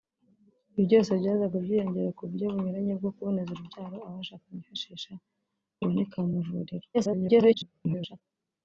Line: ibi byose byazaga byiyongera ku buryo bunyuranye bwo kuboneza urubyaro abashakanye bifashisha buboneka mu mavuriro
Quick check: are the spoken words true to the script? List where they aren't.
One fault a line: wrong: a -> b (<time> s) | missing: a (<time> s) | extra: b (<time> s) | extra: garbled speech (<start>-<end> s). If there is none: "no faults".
extra: garbled speech (6.9-8.2 s)